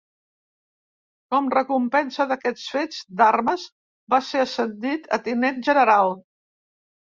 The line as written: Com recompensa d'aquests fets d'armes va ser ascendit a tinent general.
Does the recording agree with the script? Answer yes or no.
yes